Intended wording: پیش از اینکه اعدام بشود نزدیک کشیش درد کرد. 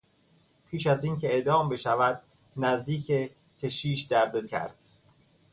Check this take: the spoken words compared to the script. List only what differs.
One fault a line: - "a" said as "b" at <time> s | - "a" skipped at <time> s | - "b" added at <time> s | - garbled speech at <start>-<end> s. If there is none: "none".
none